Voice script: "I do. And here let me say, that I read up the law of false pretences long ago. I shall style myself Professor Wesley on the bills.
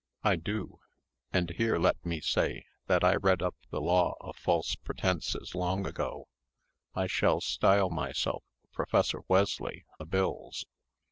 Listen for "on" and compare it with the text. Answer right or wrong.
wrong